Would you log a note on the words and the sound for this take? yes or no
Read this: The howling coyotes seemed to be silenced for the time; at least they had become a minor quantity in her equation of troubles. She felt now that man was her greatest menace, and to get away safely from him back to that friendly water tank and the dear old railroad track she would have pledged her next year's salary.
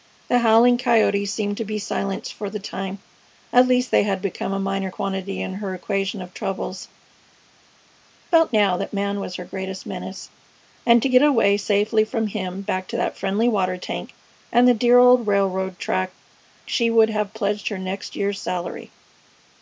yes